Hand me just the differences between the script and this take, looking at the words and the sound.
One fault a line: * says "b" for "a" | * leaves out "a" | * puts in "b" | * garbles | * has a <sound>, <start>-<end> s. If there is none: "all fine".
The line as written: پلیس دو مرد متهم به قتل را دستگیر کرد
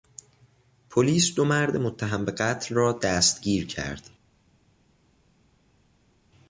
all fine